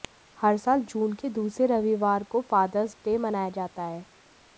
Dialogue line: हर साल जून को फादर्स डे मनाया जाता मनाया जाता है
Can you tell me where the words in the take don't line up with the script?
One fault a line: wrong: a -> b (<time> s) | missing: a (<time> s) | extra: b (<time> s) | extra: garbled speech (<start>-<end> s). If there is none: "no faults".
extra: के दूसरे रविवार (1.1 s)
missing: मनाया जाता (3.8 s)